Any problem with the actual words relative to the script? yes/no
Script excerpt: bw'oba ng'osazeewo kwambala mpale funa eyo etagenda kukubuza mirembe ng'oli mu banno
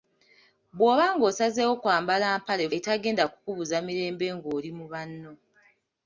yes